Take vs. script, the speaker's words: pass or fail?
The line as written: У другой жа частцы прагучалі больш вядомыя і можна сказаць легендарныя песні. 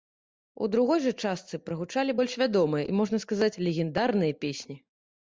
pass